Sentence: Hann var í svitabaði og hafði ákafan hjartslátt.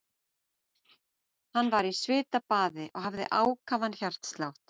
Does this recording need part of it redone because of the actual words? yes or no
no